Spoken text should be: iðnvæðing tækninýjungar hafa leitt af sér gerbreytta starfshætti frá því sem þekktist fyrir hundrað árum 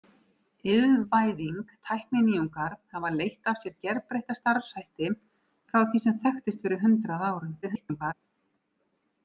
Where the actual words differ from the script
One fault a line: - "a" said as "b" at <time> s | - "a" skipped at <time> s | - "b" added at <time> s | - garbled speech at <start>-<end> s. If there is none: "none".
- garbled speech at 7.6-8.1 s